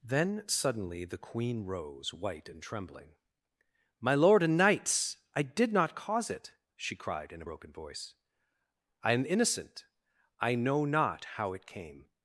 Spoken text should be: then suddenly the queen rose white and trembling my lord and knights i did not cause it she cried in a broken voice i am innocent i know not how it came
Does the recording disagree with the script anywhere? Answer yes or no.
no